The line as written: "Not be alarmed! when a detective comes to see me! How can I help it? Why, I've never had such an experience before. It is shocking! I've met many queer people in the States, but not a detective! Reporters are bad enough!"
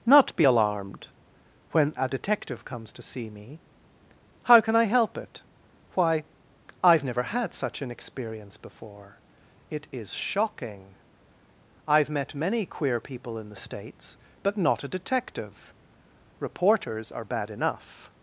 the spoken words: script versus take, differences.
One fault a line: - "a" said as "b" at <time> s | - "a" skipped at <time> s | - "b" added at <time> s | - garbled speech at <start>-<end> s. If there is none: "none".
none